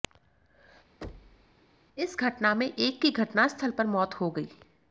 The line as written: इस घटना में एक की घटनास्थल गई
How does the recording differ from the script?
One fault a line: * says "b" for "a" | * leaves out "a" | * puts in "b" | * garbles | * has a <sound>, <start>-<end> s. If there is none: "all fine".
* has a thud, 1.0-1.5 s
* puts in "पर मौत हो"